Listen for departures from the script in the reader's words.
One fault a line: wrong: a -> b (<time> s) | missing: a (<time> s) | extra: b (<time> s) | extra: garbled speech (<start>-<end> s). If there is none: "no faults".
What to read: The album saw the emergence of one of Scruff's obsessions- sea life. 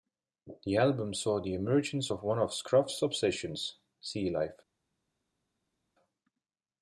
no faults